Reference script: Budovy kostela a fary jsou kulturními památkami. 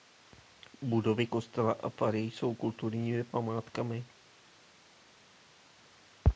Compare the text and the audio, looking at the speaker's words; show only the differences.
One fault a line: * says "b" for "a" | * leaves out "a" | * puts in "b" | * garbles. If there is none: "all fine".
all fine